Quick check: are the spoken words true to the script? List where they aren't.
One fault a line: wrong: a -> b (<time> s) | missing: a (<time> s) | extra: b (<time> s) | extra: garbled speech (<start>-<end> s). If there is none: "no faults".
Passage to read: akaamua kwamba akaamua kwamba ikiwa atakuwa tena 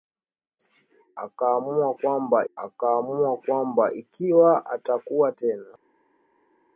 no faults